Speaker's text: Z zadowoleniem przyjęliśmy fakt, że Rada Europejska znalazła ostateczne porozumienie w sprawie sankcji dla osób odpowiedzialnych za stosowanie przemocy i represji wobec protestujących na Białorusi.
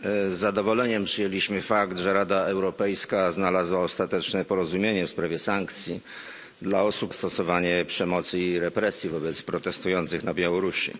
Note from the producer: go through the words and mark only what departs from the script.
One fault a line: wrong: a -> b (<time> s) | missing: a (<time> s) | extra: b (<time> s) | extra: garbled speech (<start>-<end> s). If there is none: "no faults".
missing: odpowiedzialnych za (7.1 s)